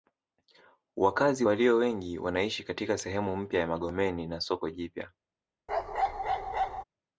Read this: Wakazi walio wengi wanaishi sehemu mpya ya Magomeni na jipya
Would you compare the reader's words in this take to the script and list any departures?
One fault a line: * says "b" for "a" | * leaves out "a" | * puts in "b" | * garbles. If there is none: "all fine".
* puts in "katika"
* puts in "soko"